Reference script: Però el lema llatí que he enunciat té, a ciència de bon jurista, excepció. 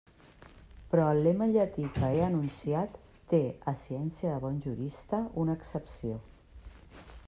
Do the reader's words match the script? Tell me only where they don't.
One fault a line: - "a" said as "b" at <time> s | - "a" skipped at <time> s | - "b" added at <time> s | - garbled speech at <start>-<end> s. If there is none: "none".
- "una" added at 5.5 s